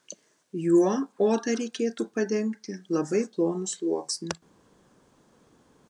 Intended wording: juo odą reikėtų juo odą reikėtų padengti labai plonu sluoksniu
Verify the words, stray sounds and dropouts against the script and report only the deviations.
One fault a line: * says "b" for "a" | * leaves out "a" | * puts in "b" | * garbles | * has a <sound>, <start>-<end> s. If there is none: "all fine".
* leaves out "juo odą reikėtų"